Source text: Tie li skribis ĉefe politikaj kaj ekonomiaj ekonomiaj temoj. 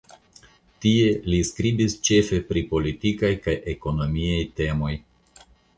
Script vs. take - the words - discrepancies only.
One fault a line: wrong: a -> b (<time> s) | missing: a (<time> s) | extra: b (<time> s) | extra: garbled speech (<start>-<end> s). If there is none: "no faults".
extra: pri (2.5 s)
missing: ekonomiaj (4.4 s)